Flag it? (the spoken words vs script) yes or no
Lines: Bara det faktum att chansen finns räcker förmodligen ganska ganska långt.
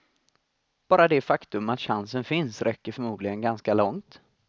yes